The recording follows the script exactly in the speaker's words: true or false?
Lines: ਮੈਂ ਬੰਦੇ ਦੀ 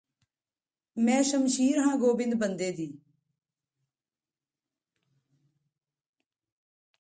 false